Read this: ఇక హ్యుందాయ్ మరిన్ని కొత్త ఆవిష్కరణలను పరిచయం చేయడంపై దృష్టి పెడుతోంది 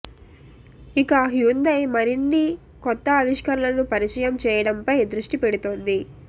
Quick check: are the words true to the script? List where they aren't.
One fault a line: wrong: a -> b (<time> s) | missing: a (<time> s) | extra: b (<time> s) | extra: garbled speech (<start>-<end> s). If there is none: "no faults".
no faults